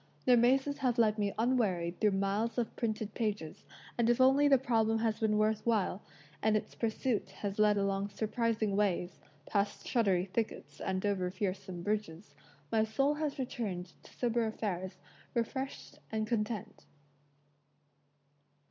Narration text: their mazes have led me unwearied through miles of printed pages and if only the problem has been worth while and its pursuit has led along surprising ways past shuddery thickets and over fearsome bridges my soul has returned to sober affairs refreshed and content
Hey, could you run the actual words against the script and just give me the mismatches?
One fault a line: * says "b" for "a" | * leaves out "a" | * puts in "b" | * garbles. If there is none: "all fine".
all fine